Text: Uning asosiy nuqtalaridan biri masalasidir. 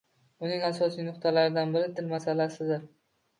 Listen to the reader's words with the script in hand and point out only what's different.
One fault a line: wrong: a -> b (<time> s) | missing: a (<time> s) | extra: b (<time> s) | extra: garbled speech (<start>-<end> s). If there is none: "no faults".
extra: til (2.0 s)